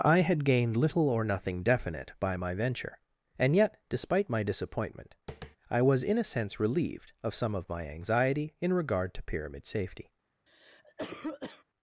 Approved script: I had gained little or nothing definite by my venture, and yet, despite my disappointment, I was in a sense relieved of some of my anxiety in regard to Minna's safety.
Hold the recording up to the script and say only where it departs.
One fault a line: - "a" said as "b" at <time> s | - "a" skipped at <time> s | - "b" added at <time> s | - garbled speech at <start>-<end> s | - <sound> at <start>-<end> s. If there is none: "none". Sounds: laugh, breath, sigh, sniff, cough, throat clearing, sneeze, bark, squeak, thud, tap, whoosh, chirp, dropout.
- tap at 5.3-5.6 s
- "Minna's" said as "Pyramid" at 9.2 s
- cough at 10.5-11.6 s